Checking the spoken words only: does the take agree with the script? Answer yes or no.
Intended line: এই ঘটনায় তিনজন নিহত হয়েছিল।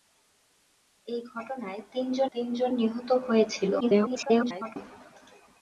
no